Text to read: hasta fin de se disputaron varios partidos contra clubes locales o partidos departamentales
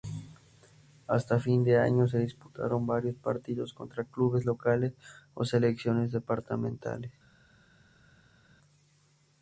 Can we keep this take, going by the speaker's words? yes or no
no